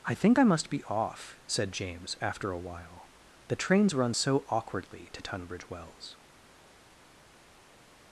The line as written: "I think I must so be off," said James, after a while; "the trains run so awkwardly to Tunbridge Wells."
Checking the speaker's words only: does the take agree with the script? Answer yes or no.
no